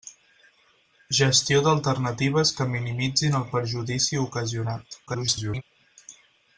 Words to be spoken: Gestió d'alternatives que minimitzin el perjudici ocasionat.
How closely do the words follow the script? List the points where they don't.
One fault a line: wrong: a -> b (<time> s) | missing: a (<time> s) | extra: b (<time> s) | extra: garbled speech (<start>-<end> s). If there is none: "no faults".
extra: garbled speech (5.1-5.6 s)